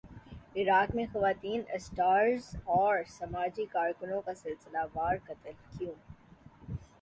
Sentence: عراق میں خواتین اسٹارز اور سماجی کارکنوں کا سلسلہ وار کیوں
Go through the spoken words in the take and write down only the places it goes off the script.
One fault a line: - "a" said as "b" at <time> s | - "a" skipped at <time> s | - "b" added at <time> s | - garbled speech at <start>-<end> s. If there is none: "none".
- "قتل" added at 5.2 s